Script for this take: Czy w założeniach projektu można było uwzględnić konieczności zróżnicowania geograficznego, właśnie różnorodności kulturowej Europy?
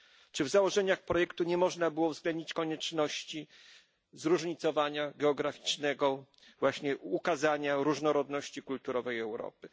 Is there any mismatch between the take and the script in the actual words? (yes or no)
yes